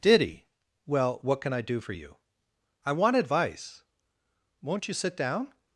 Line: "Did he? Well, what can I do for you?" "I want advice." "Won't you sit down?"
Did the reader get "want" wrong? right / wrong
right